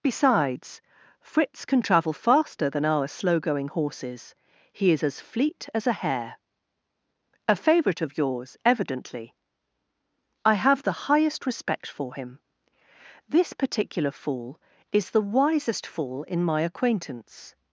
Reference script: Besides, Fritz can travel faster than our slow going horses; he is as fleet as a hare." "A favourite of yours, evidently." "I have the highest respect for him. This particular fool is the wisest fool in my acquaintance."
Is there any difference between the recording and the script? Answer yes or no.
no